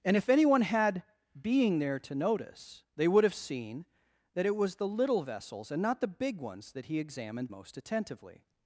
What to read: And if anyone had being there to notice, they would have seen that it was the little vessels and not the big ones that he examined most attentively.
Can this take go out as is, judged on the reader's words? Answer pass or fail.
pass